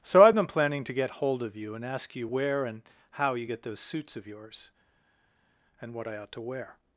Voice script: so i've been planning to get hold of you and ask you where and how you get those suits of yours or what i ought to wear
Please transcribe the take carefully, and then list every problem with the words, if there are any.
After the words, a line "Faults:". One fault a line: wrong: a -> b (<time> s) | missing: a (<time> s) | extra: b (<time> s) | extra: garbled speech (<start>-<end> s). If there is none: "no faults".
so i've been planning to get hold of you and ask you where and how you get those suits of yours and what i ought to wear
Faults:
wrong: or -> and (5.8 s)